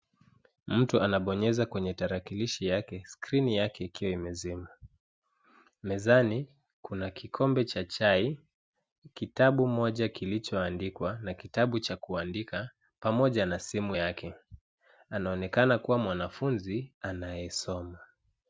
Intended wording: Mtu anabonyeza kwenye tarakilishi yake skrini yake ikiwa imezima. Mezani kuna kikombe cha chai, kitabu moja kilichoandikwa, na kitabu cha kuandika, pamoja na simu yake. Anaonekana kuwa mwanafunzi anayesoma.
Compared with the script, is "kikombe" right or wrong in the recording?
right